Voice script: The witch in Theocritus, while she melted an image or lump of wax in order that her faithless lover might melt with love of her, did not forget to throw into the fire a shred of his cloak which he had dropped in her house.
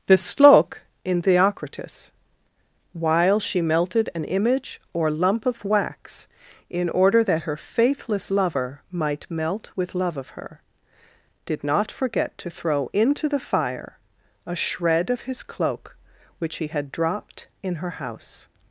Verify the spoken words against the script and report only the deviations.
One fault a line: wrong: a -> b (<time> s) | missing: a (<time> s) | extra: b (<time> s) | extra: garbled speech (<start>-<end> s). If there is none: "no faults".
wrong: witch -> slok (0.2 s)